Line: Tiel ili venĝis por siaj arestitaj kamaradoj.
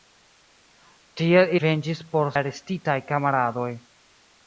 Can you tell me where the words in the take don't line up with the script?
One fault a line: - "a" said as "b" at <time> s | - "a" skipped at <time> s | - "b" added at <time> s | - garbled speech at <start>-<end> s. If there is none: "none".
- "ili" skipped at 1.5 s
- "siaj" skipped at 2.3 s